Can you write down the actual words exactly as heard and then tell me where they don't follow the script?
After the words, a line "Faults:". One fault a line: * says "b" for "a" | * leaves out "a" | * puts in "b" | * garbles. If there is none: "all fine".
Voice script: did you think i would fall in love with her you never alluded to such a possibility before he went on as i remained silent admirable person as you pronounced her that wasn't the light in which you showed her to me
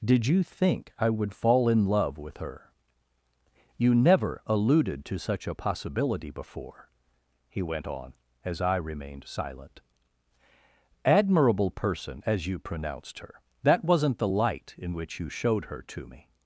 did you think i would fall in love with her you never alluded to such a possibility before he went on as i remained silent admirable person as you pronounced her that wasn't the light in which you showed her to me
Faults:
all fine